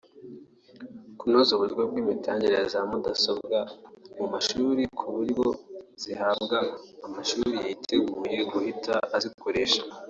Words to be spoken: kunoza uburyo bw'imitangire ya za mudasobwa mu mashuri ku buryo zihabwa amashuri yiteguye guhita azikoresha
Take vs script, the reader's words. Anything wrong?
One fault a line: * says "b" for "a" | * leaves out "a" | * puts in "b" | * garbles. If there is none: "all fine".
all fine